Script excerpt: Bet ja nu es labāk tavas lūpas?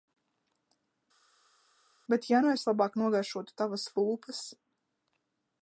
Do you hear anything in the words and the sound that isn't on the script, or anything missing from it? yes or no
yes